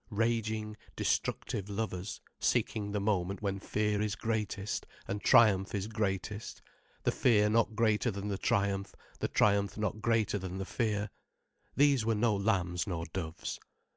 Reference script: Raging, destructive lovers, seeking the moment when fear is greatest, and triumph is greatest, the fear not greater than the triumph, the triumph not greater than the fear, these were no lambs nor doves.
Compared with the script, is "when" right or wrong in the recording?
right